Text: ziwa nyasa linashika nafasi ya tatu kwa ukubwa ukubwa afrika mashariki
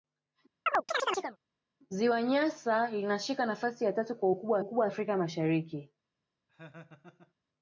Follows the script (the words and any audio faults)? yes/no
no